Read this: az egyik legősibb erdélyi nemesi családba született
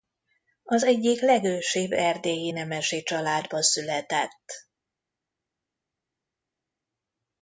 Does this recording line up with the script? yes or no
yes